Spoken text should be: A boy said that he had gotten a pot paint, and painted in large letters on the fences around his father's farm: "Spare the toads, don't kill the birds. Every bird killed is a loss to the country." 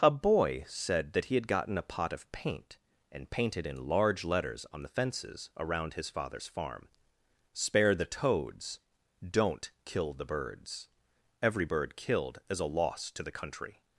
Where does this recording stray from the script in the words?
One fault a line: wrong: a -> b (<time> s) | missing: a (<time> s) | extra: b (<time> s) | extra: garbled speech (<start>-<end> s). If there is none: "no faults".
extra: of (2.1 s)